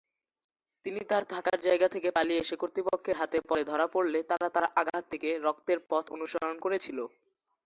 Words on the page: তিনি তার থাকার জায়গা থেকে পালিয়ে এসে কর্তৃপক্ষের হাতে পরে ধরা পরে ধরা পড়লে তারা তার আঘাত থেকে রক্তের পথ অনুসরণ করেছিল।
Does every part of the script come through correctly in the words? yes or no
no